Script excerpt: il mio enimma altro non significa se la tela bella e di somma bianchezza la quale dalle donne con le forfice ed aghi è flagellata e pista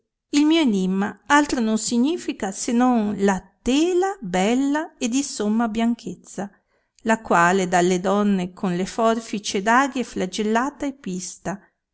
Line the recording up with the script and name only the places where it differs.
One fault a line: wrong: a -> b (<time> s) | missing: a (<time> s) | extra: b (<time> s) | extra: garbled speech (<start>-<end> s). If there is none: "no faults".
extra: non (2.7 s)